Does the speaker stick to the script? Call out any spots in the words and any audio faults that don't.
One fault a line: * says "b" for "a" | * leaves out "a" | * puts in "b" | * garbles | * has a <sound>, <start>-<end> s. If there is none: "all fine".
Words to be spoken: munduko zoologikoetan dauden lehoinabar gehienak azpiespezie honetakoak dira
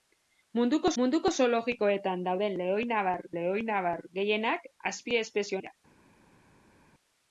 * puts in "munduko"
* puts in "lehoinabar"
* leaves out "honetakoak"